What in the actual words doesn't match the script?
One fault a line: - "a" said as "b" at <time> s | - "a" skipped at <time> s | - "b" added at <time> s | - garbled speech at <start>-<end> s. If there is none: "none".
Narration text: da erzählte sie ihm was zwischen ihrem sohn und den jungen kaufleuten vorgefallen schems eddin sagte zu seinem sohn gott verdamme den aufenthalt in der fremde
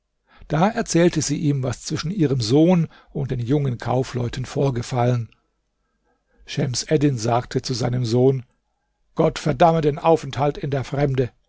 none